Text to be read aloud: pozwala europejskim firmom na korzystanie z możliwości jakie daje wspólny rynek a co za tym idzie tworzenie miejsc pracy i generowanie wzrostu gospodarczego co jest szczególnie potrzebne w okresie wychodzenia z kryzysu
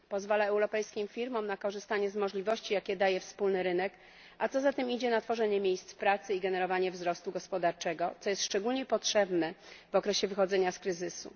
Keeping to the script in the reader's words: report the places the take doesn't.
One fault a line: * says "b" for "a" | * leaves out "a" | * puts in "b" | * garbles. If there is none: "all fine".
* puts in "na"